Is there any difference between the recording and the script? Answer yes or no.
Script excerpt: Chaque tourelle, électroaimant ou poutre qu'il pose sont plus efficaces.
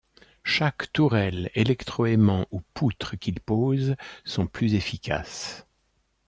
no